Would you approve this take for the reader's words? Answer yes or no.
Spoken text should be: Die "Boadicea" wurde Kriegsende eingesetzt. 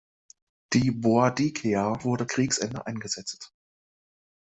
yes